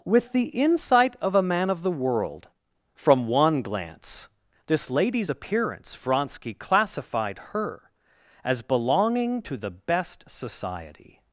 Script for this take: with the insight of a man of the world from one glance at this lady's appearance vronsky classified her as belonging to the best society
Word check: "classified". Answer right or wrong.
right